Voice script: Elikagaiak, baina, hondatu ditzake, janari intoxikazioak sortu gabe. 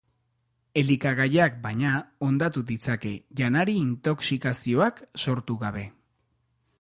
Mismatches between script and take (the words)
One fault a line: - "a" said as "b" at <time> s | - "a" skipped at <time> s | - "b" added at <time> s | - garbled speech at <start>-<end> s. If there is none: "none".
none